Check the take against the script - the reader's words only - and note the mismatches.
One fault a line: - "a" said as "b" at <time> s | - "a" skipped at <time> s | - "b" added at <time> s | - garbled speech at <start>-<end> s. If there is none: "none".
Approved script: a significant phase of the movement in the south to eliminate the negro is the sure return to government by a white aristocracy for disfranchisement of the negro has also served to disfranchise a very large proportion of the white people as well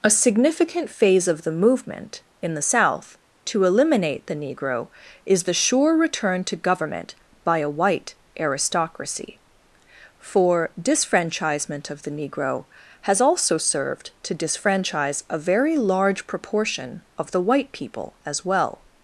none